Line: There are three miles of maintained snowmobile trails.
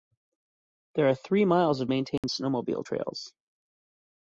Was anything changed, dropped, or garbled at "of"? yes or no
no